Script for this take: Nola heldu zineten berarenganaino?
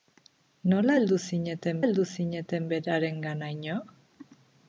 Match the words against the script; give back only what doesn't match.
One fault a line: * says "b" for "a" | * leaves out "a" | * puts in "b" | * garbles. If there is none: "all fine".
* puts in "heldu zineten"